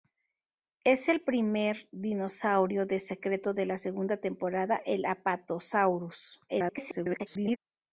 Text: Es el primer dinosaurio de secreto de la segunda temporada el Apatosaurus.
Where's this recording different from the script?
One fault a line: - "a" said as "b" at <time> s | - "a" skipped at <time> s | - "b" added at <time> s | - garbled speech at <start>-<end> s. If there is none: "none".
- garbled speech at 6.5-7.6 s